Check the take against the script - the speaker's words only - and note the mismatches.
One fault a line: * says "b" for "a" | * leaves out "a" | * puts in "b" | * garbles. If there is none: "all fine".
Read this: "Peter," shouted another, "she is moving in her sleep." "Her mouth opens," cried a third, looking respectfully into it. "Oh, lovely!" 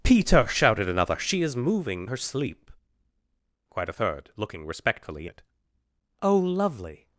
* leaves out "in"
* leaves out "Her mouth opens"
* leaves out "into"